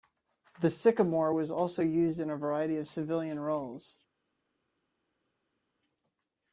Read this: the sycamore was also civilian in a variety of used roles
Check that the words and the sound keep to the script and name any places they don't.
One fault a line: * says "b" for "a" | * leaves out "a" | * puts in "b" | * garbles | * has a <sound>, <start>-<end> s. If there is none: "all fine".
* says "used" for "civilian"
* says "civilian" for "used"